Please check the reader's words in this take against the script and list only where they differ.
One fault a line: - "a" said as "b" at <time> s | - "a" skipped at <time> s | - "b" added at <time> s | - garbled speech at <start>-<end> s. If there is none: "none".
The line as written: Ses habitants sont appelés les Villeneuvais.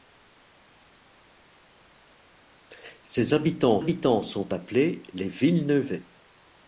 - "habitants" added at 3.8 s